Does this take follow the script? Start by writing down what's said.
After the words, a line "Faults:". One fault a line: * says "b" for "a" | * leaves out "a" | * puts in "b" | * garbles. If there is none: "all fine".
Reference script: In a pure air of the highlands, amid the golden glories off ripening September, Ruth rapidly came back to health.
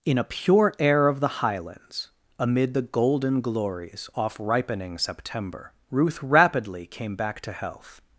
In a pure air of the highlands, amid the golden glories off ripening September, Ruth rapidly came back to health.
Faults:
all fine